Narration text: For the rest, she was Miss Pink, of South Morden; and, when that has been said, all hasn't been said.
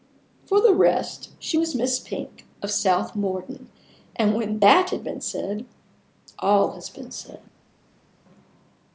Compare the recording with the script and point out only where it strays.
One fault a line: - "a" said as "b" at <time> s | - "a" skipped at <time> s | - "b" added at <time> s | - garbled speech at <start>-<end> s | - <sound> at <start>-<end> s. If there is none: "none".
- "hasn't" said as "has" at 6.7 s